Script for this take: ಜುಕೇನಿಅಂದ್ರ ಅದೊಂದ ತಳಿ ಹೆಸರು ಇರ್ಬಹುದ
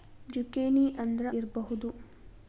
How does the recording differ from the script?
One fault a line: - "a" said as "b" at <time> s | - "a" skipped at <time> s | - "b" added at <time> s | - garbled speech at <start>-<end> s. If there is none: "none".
- "ಅದೊಂದ ತಳಿ ಹೆಸರು" skipped at 1.3 s